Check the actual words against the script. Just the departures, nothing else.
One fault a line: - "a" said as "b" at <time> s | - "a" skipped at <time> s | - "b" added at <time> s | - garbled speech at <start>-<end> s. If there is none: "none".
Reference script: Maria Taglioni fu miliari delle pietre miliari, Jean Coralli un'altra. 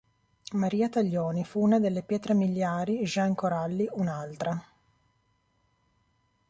- "miliari" said as "una" at 1.6 s